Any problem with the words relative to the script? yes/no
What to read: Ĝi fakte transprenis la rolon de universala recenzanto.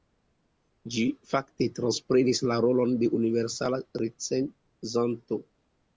no